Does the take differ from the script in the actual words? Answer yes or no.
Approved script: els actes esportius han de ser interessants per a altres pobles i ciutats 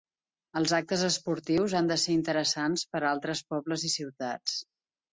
no